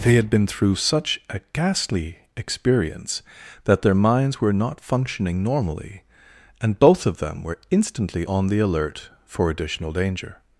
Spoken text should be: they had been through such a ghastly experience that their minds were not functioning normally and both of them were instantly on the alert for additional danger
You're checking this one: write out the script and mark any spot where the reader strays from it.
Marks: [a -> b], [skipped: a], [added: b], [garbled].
they had been through such a ghastly experience that their minds were not functioning normally and both of them were instantly on the alert for additional danger